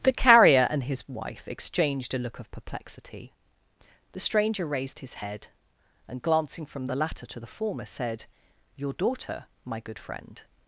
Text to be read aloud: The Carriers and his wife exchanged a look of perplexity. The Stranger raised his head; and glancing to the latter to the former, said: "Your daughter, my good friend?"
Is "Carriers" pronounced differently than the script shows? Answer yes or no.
yes